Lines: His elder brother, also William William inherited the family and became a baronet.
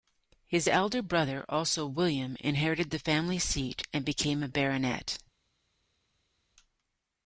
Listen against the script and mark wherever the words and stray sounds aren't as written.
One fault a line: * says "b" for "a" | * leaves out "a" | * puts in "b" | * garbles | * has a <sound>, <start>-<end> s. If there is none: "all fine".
* leaves out "William"
* puts in "seat"